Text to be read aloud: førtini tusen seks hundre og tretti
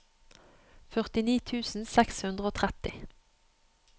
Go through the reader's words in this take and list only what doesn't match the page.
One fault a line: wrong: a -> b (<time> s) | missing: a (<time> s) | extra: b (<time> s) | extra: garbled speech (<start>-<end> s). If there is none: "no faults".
no faults